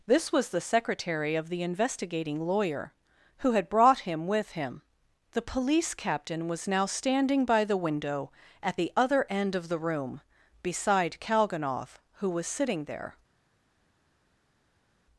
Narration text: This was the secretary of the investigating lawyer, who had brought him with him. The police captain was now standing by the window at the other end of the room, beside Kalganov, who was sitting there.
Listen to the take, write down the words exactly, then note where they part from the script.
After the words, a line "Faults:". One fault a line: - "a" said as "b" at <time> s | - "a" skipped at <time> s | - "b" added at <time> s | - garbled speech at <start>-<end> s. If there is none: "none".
This was the secretary of the investigating lawyer, who had brought him with him. The police captain was now standing by the window at the other end of the room, beside Kalganov, who was sitting there.
Faults:
none